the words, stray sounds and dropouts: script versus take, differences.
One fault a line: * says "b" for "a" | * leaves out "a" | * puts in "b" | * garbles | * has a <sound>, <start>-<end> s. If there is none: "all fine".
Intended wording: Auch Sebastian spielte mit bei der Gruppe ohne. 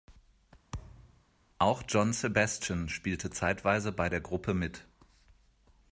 * has a thud, 0.7-1.2 s
* puts in "John"
* says "zeitweise" for "mit"
* says "mit" for "ohne"